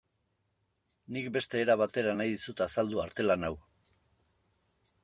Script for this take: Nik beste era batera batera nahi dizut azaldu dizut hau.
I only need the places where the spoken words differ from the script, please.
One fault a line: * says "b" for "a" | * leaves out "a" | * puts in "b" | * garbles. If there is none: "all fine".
* leaves out "batera"
* says "artelan" for "dizut"